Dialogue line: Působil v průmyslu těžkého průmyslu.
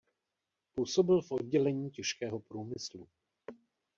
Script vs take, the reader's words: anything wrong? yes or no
yes